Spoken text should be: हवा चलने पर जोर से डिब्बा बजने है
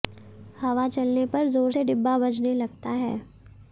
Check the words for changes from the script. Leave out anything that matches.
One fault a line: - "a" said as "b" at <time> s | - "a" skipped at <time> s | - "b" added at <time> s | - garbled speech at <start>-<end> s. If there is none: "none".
- "लगता" added at 2.5 s